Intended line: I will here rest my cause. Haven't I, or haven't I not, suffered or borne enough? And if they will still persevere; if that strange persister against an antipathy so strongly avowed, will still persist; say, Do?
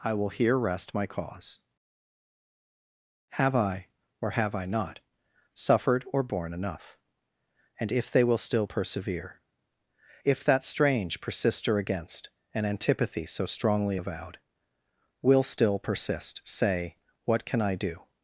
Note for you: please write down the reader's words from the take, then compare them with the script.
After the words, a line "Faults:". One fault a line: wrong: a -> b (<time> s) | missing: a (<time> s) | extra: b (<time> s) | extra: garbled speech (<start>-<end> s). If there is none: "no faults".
I will here rest my cause. Have I, or have I not, suffered or borne enough? And if they will still persevere; if that strange persister against an antipathy so strongly avowed, will still persist; say, What can I do?
Faults:
wrong: Haven't -> Have (3.4 s)
wrong: haven't -> have (4.3 s)
extra: What can I (17.2 s)